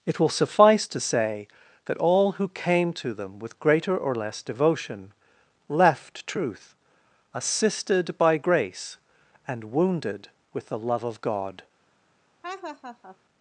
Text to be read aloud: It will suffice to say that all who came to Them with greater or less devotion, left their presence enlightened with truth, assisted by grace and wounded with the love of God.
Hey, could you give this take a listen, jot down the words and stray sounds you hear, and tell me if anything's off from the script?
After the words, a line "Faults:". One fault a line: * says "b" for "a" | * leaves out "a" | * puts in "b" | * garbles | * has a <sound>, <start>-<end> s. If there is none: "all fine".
It will suffice to say that all who came to Them with greater or less devotion, left truth, assisted by grace and wounded with the love of God.
Faults:
* leaves out "their presence enlightened with"
* has a laugh, 12.4-13.2 s